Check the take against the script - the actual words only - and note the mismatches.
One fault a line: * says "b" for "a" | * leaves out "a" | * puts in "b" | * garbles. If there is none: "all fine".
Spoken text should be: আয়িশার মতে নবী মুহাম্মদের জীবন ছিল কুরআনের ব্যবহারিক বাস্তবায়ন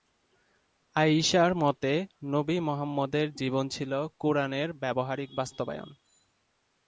all fine